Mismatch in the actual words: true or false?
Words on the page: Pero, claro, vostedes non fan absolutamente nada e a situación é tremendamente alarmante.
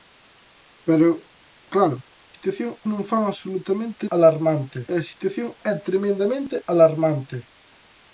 true